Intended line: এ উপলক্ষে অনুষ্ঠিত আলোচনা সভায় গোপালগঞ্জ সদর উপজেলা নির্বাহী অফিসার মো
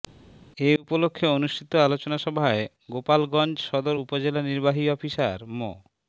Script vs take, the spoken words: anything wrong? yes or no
no